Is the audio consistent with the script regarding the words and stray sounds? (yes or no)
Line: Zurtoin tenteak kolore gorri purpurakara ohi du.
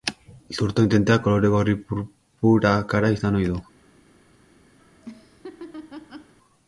no